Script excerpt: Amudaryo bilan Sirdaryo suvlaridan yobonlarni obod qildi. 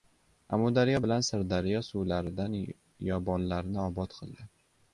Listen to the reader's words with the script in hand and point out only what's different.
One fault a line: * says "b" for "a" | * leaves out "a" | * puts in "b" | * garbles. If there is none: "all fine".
all fine